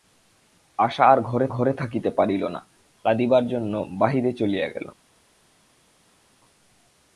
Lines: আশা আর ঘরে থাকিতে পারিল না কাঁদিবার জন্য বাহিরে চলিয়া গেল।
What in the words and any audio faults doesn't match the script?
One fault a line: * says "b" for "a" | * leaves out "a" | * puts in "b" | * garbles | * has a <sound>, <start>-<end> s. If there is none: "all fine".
* puts in "ঘরে"